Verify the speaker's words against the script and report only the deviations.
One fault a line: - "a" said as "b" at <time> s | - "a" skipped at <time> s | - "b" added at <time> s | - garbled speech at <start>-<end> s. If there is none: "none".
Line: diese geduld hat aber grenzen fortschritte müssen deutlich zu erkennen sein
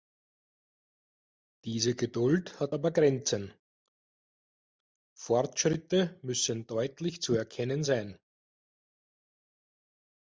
none